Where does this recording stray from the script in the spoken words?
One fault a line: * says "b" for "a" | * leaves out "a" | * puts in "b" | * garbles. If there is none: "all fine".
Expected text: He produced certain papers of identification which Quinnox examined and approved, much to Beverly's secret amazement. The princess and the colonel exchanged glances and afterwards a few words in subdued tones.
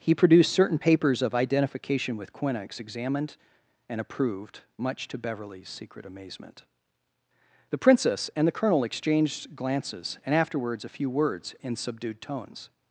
* says "with" for "which"